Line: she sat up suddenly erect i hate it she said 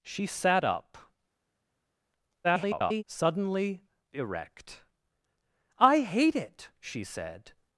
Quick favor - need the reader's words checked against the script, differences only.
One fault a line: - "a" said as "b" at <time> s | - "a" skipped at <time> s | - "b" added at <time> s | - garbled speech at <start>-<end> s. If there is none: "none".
- garbled speech at 2.4-3.0 s